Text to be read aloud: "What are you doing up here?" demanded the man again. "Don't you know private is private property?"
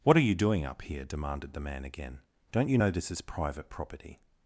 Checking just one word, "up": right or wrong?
right